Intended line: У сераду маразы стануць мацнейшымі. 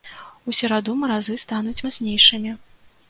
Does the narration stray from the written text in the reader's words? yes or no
no